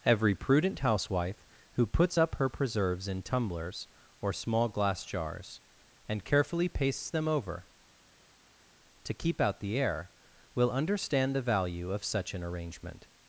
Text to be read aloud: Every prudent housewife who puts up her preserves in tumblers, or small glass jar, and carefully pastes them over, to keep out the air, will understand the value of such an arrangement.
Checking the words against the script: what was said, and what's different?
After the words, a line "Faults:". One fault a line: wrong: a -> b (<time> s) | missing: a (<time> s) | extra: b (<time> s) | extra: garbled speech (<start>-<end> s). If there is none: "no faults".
Every prudent housewife who puts up her preserves in tumblers, or small glass jars, and carefully pastes them over, to keep out the air, will understand the value of such an arrangement.
Faults:
wrong: jar -> jars (5.0 s)